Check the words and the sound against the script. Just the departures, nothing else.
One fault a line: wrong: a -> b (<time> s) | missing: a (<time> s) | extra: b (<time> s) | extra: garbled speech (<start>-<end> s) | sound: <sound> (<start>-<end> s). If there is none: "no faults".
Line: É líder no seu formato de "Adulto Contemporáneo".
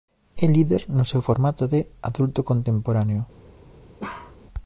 sound: bark (4.0-4.4 s)